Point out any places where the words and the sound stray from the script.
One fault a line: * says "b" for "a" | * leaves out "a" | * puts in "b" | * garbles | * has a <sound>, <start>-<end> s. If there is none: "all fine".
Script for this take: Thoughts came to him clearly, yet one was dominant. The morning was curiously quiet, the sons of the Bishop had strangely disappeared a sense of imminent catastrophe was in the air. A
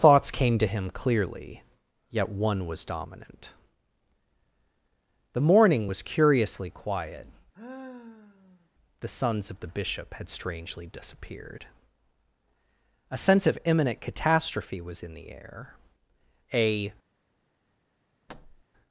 * has a sigh, 7.5-8.7 s
* has a thud, 18.3-18.6 s